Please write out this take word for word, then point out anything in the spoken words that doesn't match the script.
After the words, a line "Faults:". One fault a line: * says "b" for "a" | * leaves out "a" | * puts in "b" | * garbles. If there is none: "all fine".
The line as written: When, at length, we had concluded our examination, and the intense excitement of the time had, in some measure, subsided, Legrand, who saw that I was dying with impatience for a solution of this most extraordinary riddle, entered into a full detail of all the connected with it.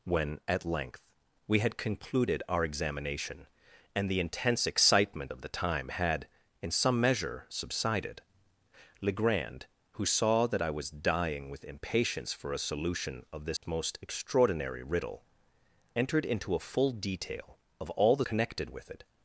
When, at length, we had concluded our examination, and the intense excitement of the time had, in some measure, subsided, Legrand, who saw that I was dying with impatience for a solution of this most extraordinary riddle, entered into a full detail of all the connected with it.
Faults:
all fine